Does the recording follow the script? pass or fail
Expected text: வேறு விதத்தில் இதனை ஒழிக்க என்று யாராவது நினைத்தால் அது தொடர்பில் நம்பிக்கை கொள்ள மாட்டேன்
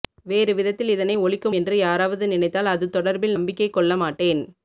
pass